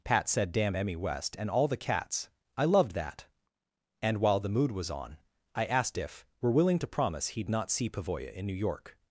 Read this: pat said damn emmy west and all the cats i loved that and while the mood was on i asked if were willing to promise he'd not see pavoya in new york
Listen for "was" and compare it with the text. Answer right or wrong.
right